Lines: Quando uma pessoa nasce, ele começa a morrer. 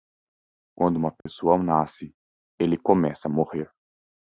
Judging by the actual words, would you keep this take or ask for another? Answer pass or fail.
pass